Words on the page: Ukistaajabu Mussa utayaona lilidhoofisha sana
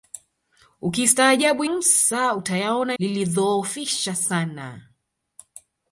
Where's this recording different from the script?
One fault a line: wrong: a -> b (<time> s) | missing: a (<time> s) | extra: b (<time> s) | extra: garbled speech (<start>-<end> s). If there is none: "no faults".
no faults